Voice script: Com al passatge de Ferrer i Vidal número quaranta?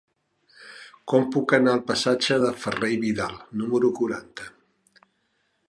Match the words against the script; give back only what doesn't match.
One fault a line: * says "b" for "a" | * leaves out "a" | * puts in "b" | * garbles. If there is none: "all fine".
* puts in "puc anar"